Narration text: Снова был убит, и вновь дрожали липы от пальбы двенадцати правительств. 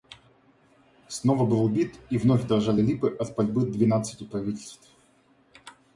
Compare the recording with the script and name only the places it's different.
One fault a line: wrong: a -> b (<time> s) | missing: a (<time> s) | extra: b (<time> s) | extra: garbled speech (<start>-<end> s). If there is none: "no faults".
no faults